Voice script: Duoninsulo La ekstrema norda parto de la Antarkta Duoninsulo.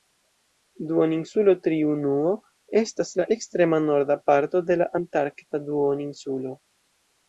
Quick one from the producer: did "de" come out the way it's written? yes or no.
yes